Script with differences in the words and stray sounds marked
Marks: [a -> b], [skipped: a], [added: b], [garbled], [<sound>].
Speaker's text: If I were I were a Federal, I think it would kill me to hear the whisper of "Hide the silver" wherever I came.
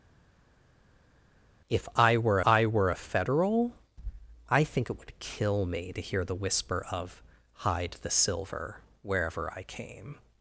If I were I were a Federal, I think it would kill me to hear the whisper of "Hide the silver" wherever I came.